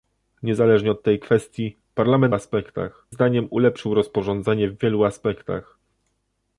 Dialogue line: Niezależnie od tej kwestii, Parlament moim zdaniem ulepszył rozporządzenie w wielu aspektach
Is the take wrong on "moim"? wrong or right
wrong